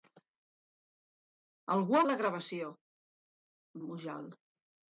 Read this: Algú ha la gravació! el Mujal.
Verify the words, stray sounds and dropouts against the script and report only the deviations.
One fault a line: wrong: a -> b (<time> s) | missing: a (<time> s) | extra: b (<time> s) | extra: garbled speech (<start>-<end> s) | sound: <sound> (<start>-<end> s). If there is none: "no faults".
no faults